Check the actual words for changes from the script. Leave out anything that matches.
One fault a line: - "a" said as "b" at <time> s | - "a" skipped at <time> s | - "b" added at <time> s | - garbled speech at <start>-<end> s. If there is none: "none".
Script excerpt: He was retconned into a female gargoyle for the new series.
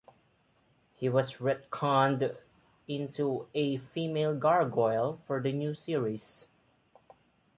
none